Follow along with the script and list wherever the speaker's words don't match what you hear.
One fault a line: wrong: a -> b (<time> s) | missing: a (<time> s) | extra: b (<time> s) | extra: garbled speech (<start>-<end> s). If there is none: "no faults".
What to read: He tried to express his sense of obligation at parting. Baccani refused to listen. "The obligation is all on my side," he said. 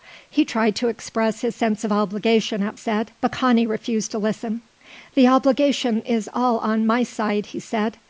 wrong: parting -> said (2.7 s)